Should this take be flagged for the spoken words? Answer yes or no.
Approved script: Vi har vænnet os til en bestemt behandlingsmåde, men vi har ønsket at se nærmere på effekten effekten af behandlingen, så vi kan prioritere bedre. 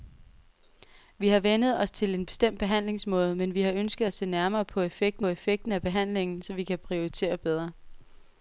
no